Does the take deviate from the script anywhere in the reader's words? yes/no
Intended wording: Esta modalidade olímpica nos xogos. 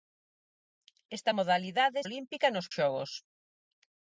no